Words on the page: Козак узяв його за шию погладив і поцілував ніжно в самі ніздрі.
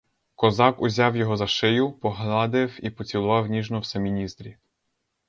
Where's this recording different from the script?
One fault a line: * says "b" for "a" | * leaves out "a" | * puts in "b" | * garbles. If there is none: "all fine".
all fine